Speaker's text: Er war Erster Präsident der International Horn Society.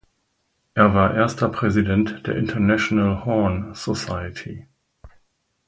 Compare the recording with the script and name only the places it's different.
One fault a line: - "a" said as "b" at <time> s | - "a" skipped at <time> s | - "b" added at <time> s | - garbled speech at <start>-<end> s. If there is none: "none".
none